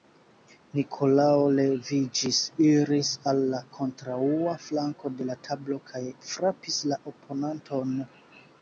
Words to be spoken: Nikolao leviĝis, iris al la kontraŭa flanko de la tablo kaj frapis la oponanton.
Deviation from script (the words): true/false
false